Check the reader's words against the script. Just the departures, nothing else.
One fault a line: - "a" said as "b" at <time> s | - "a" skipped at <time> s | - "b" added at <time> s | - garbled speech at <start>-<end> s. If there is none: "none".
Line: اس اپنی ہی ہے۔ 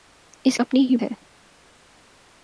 none